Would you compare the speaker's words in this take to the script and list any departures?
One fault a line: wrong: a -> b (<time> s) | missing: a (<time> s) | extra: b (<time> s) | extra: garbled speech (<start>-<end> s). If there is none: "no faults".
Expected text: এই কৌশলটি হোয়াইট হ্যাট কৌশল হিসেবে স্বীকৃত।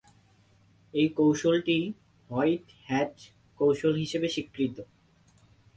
no faults